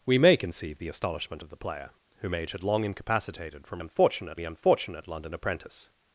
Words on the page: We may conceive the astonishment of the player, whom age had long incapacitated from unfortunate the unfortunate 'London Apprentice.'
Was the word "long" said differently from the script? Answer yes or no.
no